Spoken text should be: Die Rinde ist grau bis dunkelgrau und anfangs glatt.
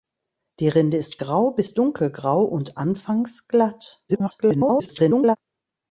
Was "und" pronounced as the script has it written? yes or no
yes